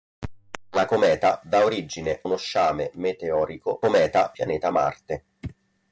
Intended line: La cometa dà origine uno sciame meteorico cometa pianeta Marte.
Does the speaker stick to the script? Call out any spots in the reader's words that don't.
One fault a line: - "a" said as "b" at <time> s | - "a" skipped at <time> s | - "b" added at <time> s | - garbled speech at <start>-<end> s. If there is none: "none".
none